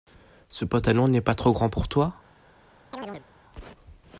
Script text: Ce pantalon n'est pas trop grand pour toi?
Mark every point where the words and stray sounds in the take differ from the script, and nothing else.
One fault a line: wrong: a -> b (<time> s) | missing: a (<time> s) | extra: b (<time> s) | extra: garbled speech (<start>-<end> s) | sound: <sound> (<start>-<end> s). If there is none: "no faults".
sound: chirp (2.9-3.3 s)